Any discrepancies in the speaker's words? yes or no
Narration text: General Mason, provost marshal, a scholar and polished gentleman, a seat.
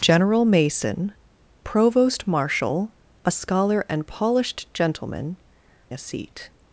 no